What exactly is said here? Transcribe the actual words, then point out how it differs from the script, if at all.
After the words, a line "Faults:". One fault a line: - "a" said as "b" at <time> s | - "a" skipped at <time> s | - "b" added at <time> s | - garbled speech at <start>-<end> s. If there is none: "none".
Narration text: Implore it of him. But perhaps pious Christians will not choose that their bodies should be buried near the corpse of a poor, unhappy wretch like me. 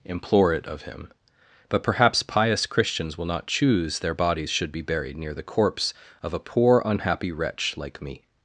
Implore it of him. But perhaps pious Christians will not choose their bodies should be buried near the corpse of a poor, unhappy wretch like me.
Faults:
- "that" skipped at 4.0 s